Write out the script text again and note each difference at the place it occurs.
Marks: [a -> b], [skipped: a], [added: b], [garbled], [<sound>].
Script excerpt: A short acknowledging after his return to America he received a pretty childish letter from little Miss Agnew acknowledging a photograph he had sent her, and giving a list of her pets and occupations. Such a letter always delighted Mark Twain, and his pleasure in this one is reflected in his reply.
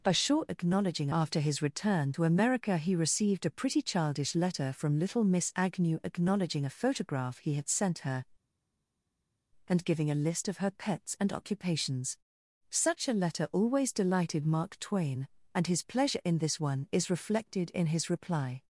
A short acknowledging after his return to America he received a pretty childish letter from little Miss Agnew acknowledging a photograph he had sent her, and giving a list of her pets and occupations. Such a letter always delighted Mark Twain, and his pleasure in this one is reflected in his reply.